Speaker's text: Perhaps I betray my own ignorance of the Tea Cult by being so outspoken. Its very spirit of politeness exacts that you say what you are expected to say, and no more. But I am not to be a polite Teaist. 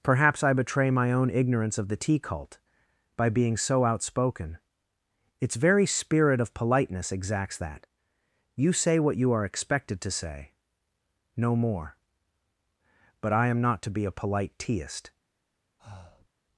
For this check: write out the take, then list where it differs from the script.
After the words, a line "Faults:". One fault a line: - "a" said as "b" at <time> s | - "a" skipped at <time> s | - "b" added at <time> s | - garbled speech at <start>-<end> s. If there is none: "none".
Perhaps I betray my own ignorance of the Tea Cult by being so outspoken. Its very spirit of politeness exacts that you say what you are expected to say, no more. But I am not to be a polite Teaist.
Faults:
- "and" skipped at 10.5 s